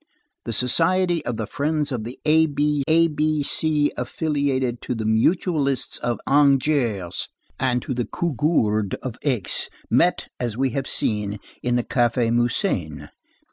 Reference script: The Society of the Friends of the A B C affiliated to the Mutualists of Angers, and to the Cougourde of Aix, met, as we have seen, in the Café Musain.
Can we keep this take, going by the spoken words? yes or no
no